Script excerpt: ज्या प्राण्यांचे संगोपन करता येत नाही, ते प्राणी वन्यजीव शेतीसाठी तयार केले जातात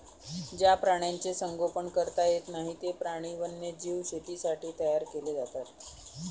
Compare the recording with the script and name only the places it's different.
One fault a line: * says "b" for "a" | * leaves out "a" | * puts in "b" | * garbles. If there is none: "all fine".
all fine